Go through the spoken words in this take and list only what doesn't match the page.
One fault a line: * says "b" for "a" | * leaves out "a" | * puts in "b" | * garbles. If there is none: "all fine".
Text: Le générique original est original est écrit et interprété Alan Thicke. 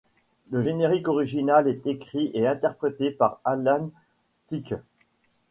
* leaves out "original est"
* puts in "par"